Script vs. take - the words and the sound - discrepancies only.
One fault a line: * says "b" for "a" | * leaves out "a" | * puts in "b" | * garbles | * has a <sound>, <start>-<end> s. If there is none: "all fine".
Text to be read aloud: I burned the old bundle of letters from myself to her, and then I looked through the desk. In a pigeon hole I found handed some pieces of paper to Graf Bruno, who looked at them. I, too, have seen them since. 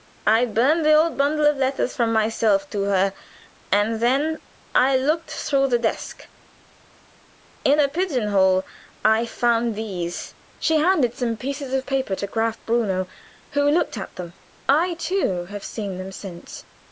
* puts in "these She"